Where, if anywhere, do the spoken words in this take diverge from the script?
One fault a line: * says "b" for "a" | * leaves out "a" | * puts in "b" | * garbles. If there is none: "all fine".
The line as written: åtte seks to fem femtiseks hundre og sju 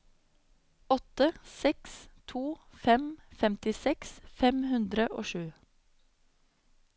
* puts in "fem"